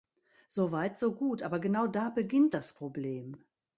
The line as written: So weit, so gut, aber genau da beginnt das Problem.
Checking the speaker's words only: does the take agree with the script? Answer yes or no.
yes